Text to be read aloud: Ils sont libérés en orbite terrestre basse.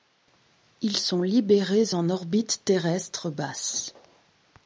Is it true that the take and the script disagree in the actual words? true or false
false